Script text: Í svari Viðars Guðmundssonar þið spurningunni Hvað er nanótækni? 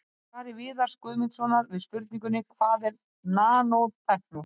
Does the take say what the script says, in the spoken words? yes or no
no